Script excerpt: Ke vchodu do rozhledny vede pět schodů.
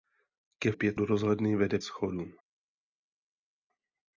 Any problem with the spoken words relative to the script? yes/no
yes